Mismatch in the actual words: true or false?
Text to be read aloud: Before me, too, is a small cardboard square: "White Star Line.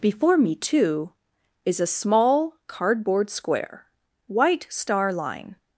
false